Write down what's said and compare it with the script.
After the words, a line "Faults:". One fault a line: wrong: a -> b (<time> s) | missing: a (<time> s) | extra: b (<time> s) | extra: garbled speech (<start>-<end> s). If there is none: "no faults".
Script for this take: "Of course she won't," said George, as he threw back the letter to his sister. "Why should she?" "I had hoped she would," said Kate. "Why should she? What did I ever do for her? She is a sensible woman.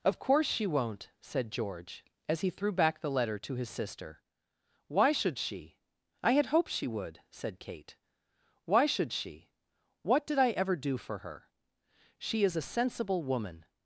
"Of course she won't," said George, as he threw back the letter to his sister. "Why should she?" "I had hoped she would," said Kate. "Why should she? What did I ever do for her? She is a sensible woman.
Faults:
no faults